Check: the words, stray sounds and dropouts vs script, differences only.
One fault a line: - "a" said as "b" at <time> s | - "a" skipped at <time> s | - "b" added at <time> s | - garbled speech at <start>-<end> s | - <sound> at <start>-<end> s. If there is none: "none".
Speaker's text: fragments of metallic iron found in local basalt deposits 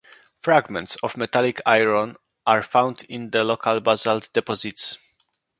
- "are" added at 2.5 s
- "the" added at 3.3 s